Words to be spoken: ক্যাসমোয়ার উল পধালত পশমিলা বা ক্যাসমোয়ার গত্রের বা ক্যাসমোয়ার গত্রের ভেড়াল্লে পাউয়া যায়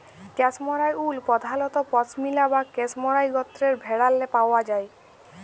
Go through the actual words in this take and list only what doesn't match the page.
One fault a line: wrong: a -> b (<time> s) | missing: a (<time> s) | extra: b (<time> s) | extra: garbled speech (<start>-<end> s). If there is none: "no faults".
missing: বা ক্যাসমোয়ার গত্রের (3.7 s)